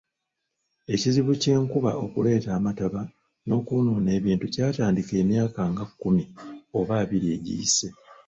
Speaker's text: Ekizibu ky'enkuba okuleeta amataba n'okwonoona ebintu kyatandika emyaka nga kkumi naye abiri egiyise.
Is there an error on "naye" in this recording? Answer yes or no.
yes